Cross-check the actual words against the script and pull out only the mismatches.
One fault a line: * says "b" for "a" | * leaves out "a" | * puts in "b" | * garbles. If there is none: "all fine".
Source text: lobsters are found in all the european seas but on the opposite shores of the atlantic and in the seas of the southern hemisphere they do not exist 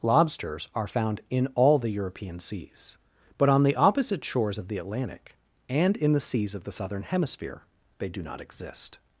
all fine